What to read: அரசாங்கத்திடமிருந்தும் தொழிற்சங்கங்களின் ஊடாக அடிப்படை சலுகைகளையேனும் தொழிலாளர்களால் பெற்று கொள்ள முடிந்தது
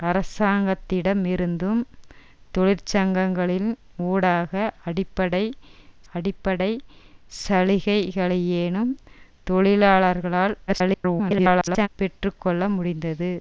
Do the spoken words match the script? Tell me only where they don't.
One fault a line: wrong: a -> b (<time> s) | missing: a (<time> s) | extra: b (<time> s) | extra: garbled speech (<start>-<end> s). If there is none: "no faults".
extra: அடிப்படை (6.1 s)
extra: garbled speech (10.7-11.9 s)